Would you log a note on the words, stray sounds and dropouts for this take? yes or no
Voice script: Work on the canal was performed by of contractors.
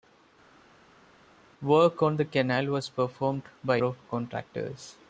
no